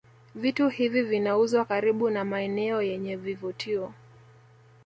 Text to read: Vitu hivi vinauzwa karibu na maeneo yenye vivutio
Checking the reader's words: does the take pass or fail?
pass